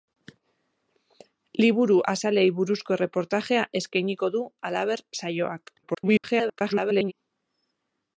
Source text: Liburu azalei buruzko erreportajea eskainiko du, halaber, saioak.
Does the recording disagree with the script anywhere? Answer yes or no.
yes